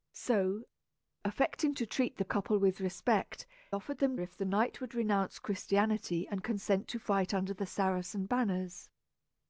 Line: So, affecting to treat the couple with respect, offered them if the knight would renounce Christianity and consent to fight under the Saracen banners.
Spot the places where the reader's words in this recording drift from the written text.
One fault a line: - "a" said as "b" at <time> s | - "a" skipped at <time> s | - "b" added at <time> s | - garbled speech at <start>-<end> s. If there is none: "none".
none